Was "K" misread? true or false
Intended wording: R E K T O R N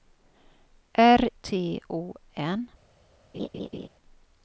true